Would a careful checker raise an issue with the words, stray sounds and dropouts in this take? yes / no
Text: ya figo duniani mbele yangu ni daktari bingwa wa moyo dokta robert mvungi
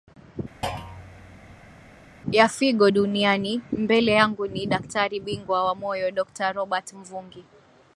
yes